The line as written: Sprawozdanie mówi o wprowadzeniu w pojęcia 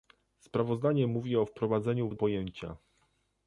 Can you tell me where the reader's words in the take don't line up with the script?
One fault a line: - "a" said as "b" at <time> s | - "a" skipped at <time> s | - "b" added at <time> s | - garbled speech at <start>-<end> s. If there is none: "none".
none